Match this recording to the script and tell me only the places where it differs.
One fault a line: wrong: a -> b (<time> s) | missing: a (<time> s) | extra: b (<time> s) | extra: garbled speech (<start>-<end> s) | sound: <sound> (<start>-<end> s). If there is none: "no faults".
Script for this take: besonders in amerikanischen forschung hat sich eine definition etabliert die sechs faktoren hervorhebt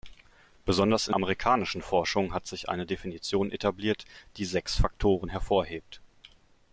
no faults